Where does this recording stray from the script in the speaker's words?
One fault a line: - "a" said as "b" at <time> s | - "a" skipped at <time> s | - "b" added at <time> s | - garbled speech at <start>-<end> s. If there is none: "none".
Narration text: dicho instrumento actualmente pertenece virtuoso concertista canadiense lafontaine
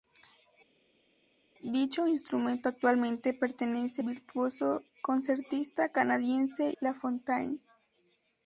none